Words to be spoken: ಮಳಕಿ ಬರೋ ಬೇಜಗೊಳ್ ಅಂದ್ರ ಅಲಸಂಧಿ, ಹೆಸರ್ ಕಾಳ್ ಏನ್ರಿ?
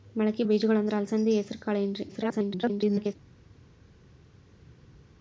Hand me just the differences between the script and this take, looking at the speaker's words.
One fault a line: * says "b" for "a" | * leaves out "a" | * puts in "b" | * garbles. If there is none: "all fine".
* leaves out "ಬರೋ"
* garbles